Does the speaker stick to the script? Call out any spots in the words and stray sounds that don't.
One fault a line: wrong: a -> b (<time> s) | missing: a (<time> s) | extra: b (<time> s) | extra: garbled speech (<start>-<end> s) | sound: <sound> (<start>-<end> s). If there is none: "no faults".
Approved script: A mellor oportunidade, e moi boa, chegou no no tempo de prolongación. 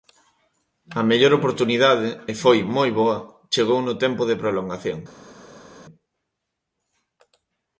extra: foi (2.4 s)
missing: no (3.9 s)